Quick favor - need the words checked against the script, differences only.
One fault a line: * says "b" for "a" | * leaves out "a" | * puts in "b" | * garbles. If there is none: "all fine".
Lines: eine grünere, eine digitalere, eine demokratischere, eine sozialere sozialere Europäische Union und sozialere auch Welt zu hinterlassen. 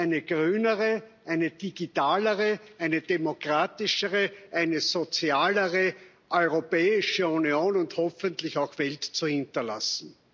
* leaves out "sozialere"
* says "hoffentlich" for "sozialere"